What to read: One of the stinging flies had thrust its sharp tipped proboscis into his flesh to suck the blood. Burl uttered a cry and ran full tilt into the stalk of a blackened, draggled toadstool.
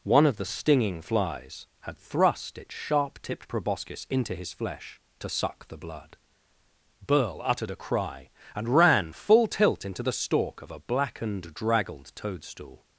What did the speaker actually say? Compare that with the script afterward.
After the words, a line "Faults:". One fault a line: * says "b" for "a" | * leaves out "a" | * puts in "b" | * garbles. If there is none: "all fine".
One of the stinging flies had thrust its sharp tipped proboscis into his flesh to suck the blood. Burl uttered a cry and ran full tilt into the stalk of a blackened, draggled toadstool.
Faults:
all fine